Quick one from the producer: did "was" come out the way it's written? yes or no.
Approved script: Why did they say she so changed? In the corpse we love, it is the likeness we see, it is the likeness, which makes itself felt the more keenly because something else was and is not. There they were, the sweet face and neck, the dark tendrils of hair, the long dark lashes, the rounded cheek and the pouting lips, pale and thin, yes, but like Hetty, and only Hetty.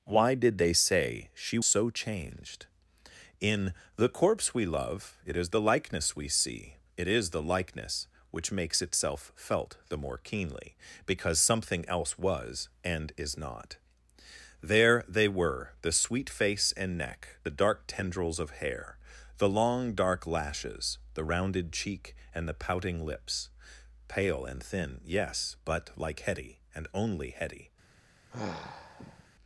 yes